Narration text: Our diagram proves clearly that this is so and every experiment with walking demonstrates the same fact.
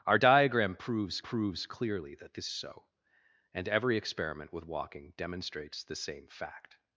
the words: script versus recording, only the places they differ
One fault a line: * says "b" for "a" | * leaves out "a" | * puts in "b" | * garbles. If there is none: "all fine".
* puts in "proves"
* leaves out "is"